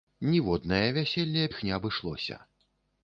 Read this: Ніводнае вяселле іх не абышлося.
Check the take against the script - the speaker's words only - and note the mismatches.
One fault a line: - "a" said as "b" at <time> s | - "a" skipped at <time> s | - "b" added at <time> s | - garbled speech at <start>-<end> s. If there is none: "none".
none